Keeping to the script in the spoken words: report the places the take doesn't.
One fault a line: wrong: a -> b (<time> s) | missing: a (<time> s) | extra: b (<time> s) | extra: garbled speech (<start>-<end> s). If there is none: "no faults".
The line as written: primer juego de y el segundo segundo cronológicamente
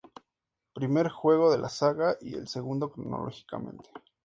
extra: la saga (1.6 s)
missing: segundo (2.9 s)